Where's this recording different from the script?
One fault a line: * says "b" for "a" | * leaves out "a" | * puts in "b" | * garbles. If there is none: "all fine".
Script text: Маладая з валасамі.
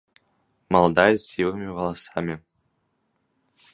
* puts in "сівымі"